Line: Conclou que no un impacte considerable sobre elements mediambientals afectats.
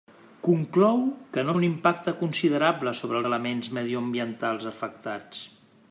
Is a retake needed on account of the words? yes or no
no